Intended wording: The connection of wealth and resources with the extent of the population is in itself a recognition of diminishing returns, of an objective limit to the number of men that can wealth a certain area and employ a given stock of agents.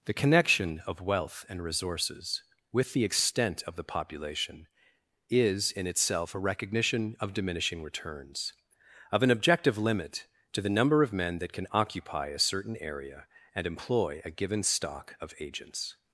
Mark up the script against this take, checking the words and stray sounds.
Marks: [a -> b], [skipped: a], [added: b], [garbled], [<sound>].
The connection of wealth and resources with the extent of the population is in itself a recognition of diminishing returns, of an objective limit to the number of men that can [wealth -> occupy] a certain area and employ a given stock of agents.